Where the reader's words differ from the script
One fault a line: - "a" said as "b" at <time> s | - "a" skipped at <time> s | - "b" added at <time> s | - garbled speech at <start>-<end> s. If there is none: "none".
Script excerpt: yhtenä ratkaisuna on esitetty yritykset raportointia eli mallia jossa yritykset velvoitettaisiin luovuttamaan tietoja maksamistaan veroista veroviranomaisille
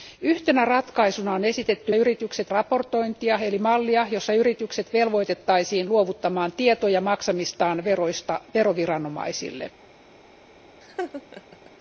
none